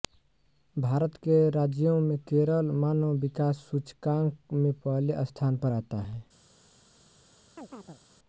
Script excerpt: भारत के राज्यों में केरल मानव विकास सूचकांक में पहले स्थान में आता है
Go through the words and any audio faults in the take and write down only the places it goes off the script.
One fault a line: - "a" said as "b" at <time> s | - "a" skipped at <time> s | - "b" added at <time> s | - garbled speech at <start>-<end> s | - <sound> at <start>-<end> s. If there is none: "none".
- "में" said as "पर" at 5.6 s
- chirp at 7.6-8.0 s